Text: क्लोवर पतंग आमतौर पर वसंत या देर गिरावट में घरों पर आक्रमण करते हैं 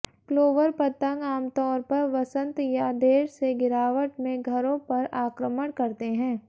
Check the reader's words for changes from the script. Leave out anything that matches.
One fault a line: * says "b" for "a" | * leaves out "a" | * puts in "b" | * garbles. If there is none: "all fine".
* puts in "से"